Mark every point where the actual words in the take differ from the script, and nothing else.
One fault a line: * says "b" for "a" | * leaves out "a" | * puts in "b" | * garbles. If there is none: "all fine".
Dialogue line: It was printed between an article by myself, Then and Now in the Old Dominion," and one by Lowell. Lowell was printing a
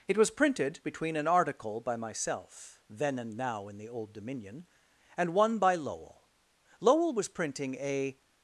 all fine